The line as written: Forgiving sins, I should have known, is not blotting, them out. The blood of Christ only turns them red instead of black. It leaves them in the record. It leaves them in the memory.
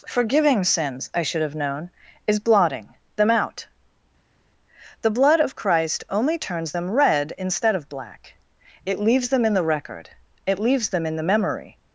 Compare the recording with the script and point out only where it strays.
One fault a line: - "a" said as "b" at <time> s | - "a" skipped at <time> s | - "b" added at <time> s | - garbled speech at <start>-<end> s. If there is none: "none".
- "not" skipped at 2.4 s